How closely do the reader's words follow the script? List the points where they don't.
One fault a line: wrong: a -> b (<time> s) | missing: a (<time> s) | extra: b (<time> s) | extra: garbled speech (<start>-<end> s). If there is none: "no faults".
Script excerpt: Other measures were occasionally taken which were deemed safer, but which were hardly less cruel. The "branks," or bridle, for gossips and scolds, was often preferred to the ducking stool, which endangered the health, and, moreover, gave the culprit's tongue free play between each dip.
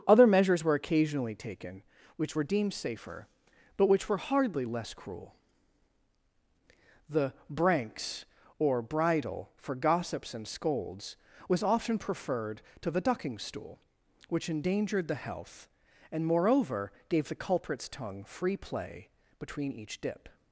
no faults